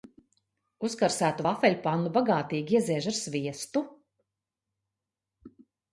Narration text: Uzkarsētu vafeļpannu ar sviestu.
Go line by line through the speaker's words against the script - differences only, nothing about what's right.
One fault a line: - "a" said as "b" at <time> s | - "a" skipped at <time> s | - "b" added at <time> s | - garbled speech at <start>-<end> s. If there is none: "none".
- "bagātīgi ieziež" added at 2.2 s